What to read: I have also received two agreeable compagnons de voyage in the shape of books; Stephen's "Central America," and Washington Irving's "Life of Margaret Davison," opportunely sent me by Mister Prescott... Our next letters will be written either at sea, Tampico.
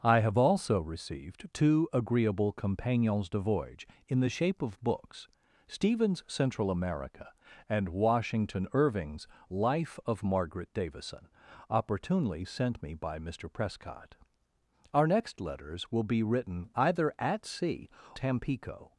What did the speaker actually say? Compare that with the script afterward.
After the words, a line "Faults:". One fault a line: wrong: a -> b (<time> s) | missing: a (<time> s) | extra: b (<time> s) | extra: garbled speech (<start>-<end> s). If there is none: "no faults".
I have also received two agreeable compagnons de voyage in the shape of books; Stephen's "Central America," and Washington Irving's "Life of Margaret Davison," opportunely sent me by Mister Prescott... Our next letters will be written either at sea, Tampico.
Faults:
no faults